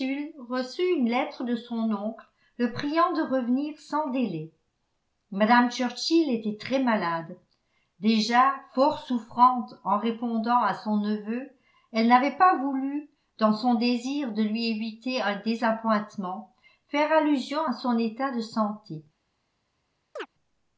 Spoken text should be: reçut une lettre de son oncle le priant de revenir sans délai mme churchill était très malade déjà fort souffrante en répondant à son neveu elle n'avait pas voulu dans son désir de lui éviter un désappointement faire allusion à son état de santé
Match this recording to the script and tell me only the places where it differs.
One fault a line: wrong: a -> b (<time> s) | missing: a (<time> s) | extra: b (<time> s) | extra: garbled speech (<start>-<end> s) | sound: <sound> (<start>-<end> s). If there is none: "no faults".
sound: chirp (20.2-20.3 s)